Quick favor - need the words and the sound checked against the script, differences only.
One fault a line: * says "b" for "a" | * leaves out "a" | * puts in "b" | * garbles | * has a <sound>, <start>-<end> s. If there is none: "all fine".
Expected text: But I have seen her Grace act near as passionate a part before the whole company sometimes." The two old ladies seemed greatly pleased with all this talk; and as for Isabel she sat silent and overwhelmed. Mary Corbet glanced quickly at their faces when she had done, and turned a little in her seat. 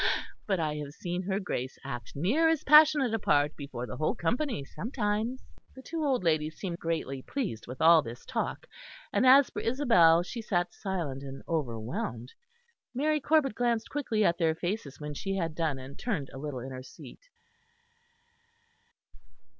all fine